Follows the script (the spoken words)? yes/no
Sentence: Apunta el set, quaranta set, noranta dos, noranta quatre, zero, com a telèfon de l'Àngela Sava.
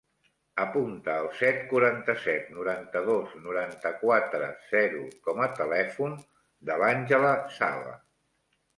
yes